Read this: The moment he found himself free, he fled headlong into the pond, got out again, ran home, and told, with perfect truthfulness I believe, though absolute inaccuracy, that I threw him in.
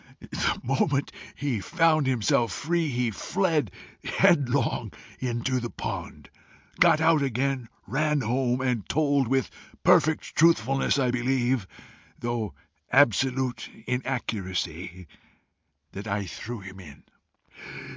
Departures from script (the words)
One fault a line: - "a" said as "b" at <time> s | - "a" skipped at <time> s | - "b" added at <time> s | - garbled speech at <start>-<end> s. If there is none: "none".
none